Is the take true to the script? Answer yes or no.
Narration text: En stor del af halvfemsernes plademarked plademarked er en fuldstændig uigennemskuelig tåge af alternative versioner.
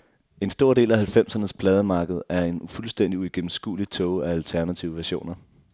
no